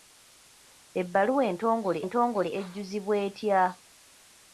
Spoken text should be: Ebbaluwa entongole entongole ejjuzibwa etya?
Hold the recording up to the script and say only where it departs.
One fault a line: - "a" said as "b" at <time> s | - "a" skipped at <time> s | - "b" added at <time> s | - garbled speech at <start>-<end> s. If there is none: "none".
none